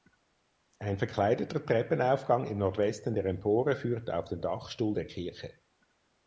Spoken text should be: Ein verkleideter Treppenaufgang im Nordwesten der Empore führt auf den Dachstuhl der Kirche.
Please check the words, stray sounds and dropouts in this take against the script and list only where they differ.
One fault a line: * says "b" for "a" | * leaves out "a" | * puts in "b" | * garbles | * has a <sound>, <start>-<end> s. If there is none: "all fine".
all fine